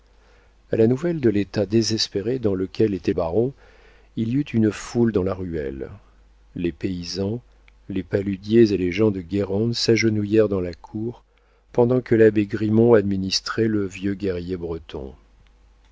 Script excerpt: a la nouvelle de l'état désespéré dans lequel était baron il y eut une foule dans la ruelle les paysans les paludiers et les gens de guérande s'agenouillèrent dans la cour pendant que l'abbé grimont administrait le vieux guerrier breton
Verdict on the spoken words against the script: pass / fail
pass